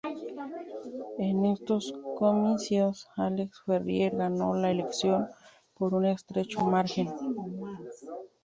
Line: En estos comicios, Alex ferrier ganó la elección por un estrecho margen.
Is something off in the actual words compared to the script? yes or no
no